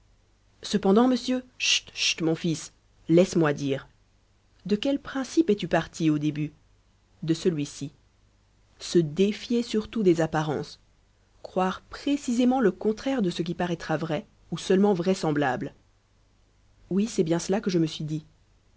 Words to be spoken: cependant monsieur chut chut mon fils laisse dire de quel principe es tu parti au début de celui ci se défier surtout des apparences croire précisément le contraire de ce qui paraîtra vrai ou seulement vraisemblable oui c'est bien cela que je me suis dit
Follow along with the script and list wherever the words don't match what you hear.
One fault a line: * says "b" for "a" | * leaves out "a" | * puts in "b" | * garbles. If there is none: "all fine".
* puts in "moi"